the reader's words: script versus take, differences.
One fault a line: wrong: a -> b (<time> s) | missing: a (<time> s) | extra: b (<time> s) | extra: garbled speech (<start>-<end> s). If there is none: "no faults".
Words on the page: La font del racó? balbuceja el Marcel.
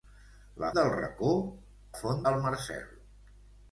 missing: font (0.7 s)
wrong: balbuceja -> font (2.0 s)